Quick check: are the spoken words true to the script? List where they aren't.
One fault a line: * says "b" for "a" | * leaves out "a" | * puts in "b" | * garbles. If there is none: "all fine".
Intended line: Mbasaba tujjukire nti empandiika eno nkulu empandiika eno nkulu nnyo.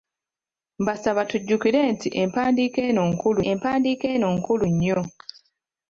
all fine